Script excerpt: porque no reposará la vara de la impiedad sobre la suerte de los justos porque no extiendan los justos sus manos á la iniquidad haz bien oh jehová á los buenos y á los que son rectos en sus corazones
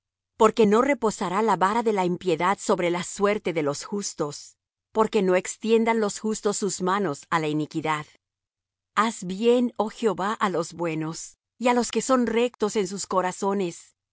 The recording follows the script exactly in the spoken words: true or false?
true